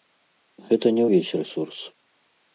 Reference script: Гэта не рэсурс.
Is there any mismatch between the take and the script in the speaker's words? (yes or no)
yes